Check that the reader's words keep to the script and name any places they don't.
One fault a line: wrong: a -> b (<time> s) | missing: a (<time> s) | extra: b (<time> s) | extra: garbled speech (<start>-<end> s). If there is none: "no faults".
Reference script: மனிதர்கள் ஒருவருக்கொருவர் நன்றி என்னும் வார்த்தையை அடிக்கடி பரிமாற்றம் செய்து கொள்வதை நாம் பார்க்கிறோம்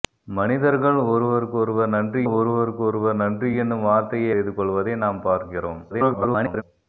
extra: ஒருவருக்கொருவர் நன்றி (2.3 s)
missing: அடிக்கடி பரிமாற்றம் (4.3 s)
extra: garbled speech (5.9-6.6 s)